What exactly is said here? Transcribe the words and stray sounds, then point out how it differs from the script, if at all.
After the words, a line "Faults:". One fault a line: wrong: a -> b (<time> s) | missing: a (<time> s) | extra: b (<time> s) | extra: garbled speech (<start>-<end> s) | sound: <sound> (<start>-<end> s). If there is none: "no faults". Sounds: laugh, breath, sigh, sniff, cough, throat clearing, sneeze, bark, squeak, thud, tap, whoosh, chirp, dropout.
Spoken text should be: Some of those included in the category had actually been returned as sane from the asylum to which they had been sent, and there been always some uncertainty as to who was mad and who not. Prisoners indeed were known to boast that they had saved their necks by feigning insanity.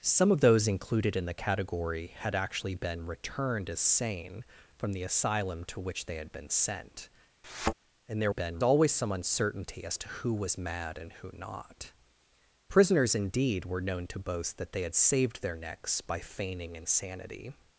Some of those included in the category had actually been returned as sane from the asylum to which they had been sent, and there been always some uncertainty as to who was mad and who not. Prisoners indeed were known to boast that they had saved their necks by feigning insanity.
Faults:
sound: thud (7.4-7.7 s)